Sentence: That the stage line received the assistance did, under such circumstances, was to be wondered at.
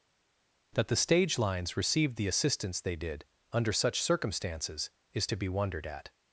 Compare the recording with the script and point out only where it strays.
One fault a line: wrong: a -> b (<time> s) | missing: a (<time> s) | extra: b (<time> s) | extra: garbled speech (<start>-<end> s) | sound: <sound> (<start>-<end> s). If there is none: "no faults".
wrong: line -> lines (1.4 s)
extra: they (2.8 s)
wrong: was -> is (5.1 s)